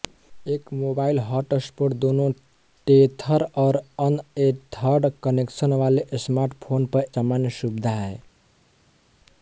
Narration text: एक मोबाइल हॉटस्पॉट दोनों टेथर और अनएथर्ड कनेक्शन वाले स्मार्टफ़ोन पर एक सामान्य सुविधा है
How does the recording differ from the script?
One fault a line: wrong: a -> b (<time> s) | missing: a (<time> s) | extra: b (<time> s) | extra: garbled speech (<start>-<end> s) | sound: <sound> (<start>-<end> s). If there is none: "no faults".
missing: एक (7.0 s)